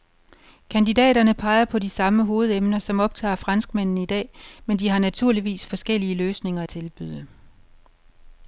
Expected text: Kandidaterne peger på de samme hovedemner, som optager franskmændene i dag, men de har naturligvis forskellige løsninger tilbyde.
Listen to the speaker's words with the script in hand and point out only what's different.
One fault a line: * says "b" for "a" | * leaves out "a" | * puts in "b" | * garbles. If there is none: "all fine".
all fine